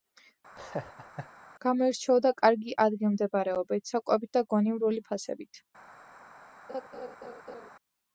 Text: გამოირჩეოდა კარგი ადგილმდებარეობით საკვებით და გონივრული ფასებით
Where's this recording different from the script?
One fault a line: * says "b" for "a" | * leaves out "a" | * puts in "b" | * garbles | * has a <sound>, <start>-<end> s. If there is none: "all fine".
* has a laugh, 0.6-1.3 s
* has a laugh, 6.7-7.7 s